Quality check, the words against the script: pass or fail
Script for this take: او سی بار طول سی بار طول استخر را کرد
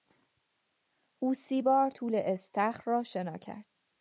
fail